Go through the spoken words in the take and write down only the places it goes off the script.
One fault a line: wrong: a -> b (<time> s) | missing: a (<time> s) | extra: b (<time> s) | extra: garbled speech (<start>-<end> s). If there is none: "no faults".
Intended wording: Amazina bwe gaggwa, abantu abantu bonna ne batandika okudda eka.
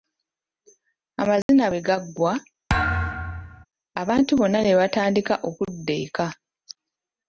missing: abantu (4.3 s)